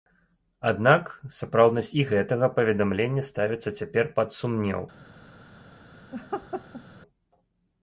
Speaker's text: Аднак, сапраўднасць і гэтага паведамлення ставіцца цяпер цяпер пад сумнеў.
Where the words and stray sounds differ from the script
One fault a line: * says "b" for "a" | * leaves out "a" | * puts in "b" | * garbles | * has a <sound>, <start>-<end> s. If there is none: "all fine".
* leaves out "цяпер"
* has a laugh, 6.1-6.8 s